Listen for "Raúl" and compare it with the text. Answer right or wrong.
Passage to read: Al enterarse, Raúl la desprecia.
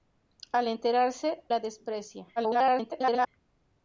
wrong